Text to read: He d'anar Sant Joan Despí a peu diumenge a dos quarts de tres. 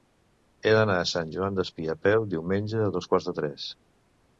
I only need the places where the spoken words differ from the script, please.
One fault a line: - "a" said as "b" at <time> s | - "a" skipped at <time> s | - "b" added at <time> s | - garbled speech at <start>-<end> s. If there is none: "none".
- "a" added at 1.0 s